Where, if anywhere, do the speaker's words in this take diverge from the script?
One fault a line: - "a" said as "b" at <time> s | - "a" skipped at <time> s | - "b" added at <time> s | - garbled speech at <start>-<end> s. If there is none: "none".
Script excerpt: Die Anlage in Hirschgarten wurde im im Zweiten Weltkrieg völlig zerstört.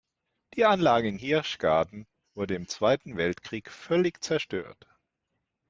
- "im" skipped at 2.7 s